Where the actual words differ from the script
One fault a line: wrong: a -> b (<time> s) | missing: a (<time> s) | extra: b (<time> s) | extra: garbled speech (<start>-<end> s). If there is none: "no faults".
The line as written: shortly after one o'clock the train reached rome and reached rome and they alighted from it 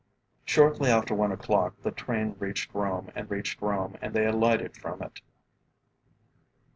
no faults